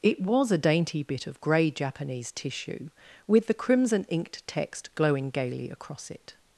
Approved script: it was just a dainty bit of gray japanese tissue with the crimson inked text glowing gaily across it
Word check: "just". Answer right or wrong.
wrong